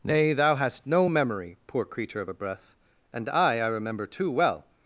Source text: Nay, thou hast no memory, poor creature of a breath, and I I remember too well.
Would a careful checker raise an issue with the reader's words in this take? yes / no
no